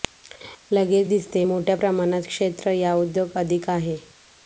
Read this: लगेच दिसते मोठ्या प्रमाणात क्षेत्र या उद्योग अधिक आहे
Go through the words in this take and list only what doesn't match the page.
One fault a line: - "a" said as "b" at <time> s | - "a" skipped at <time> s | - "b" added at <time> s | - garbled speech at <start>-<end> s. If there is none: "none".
none